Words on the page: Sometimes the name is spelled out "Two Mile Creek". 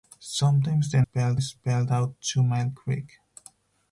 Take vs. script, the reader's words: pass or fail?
fail